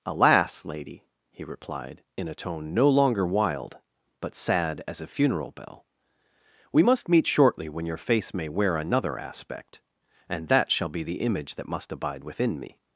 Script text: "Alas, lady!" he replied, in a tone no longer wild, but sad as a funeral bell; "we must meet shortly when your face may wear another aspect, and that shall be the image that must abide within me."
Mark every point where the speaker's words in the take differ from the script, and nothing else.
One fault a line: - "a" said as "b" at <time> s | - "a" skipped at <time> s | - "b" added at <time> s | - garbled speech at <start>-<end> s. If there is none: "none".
none